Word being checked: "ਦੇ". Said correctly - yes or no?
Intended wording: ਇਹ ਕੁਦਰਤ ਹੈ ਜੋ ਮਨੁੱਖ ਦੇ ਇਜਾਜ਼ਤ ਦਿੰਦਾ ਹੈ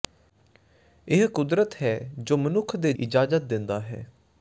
yes